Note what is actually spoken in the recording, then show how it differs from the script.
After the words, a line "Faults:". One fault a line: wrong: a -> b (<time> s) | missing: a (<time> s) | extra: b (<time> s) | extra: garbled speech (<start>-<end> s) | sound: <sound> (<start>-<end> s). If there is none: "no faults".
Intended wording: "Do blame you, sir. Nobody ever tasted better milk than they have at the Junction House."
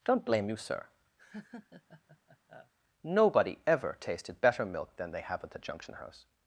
"Don't blame you, sir. Nobody ever tasted better milk than they have at the Junction House."
Faults:
wrong: Do -> Don't (0.0 s)
sound: laugh (1.2-2.7 s)